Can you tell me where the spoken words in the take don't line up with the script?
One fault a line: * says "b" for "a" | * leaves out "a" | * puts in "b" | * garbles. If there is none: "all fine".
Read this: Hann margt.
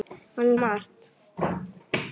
all fine